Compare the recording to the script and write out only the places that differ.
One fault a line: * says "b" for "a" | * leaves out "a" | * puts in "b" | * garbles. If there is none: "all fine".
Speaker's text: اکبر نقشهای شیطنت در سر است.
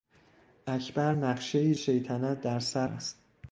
all fine